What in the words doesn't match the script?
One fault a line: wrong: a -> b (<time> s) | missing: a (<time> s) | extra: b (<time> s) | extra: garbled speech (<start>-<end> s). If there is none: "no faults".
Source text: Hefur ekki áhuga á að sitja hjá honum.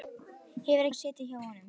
missing: ekki áhuga (0.9 s)